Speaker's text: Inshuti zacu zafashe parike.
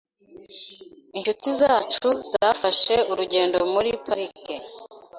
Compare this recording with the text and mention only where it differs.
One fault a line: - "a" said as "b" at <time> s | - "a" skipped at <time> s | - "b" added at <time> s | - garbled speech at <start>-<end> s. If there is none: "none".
- "urugendo muri" added at 3.1 s